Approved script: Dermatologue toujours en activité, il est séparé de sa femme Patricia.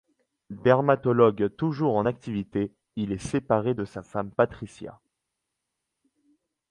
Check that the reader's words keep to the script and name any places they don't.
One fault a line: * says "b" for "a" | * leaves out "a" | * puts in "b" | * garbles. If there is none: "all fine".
all fine